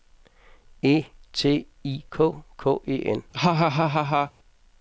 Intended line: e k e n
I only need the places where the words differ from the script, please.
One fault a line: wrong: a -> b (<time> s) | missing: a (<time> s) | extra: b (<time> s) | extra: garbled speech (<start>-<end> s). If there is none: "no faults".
extra: t i k (1.3 s)